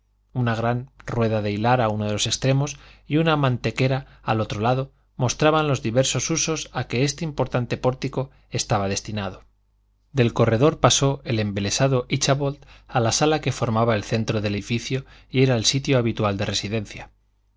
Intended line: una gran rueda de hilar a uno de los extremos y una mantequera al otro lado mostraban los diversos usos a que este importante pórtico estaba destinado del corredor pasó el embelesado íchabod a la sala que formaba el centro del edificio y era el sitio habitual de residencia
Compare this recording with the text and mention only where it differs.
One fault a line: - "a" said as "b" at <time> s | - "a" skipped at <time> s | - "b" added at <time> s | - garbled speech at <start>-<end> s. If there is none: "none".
none